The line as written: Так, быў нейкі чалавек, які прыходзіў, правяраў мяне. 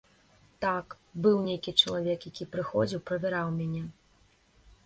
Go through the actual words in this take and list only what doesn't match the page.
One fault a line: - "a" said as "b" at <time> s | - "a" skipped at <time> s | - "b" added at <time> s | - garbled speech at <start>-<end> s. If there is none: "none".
none